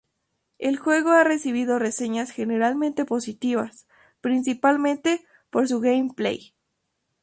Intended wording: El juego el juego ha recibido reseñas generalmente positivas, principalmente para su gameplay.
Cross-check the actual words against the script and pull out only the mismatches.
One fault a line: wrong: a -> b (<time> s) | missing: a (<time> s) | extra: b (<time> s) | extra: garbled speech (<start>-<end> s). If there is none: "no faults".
missing: el juego (1.1 s)
wrong: para -> por (5.5 s)